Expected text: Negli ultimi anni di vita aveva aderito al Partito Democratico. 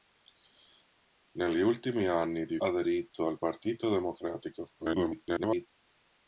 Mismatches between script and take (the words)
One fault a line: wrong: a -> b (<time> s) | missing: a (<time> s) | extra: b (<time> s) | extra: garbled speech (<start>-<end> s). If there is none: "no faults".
missing: vita aveva (2.6 s)
extra: garbled speech (4.8-5.7 s)